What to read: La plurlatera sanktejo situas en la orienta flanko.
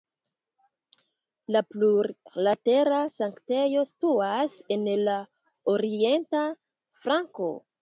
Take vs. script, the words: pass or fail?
pass